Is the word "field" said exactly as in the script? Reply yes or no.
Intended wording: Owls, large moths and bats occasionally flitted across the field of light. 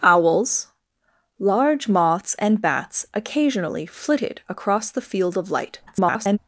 yes